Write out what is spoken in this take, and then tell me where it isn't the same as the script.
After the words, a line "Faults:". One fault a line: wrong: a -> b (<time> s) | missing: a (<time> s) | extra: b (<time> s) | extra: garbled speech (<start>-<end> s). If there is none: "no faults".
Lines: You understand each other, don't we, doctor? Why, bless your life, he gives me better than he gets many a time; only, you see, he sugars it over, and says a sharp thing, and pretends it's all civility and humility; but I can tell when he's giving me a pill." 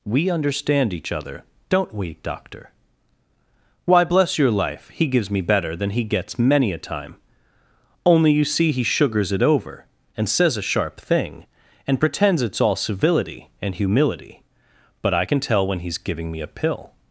We understand each other, don't we, doctor? Why, bless your life, he gives me better than he gets many a time; only, you see, he sugars it over, and says a sharp thing, and pretends it's all civility and humility; but I can tell when he's giving me a pill."
Faults:
wrong: You -> We (0.0 s)